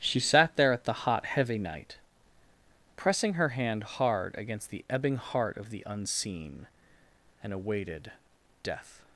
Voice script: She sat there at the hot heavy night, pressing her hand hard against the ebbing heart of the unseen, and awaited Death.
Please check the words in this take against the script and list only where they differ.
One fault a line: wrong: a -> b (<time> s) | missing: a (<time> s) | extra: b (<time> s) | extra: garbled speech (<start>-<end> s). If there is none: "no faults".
no faults